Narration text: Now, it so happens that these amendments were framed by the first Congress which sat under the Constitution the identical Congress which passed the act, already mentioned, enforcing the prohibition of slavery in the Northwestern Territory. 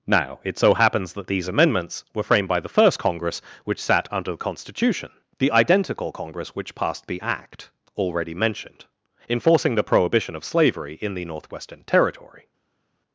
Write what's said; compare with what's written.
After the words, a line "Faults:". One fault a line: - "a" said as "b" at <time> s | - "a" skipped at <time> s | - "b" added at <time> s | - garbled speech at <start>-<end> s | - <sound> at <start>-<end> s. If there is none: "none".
Now, it so happens that these amendments were framed by the first Congress which sat under the Constitution the identical Congress which passed the act, already mentioned, enforcing the prohibition of slavery in the Northwestern Territory.
Faults:
none